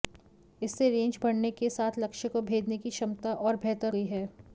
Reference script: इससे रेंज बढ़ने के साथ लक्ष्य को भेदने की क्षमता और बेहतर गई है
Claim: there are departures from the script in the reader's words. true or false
false